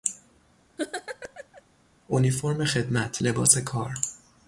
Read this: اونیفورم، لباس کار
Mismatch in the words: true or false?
true